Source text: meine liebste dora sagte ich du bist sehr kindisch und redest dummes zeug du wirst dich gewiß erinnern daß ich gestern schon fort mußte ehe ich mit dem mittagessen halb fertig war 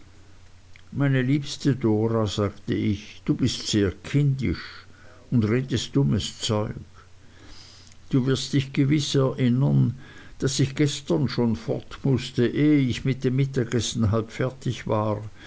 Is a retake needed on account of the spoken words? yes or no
no